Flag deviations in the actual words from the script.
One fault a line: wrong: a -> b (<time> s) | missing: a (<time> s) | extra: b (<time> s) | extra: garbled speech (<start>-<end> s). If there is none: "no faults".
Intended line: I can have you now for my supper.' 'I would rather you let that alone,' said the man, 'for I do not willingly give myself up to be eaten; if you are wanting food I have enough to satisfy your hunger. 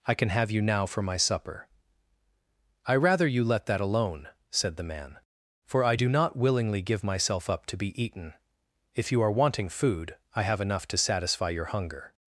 missing: would (3.0 s)